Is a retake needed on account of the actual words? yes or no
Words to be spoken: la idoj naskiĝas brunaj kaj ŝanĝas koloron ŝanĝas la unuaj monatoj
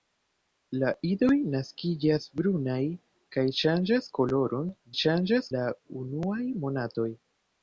no